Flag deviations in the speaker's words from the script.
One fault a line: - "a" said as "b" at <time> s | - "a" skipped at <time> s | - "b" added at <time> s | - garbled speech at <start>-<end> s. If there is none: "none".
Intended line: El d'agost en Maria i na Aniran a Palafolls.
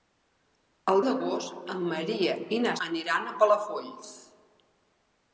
none